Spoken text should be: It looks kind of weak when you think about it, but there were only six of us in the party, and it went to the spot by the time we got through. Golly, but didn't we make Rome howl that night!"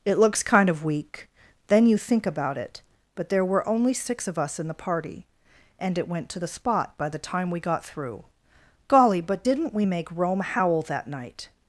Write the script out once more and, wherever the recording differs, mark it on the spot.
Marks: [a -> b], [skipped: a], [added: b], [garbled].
It looks kind of weak [when -> then] you think about it, but there were only six of us in the party, and it went to the spot by the time we got through. Golly, but didn't we make Rome howl that night!"